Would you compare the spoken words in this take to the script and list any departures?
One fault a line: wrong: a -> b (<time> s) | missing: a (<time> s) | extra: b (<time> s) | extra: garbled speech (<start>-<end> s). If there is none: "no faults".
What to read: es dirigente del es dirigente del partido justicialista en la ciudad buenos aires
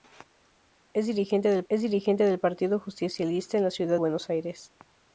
no faults